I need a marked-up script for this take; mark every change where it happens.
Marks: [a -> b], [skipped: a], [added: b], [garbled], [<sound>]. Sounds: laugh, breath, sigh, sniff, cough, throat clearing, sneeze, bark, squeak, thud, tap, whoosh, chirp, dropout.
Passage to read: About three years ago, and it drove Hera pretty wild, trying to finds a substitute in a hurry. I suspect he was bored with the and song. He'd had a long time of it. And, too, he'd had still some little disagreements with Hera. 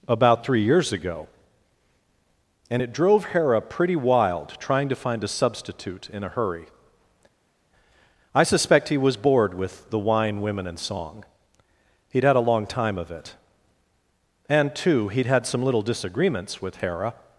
About three years ago, and it drove Hera pretty wild, trying to [finds -> find] a substitute in a hurry. I suspect he was bored with the [added: wine women] and song. He'd had a long time of it. And, too, he'd had [skipped: still] some little disagreements with Hera.